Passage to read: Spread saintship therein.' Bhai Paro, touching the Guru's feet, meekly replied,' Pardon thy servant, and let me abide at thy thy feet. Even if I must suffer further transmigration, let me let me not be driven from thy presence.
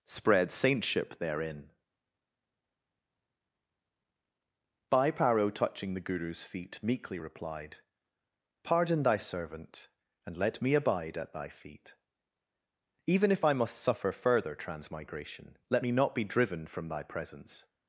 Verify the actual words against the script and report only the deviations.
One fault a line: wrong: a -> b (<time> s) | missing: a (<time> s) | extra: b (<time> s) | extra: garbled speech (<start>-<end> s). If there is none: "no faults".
missing: thy (11.5 s)
missing: let me (15.9 s)